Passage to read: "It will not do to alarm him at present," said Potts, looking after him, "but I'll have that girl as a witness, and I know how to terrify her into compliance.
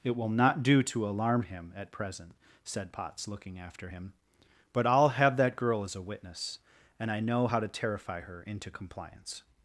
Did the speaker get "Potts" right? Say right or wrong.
right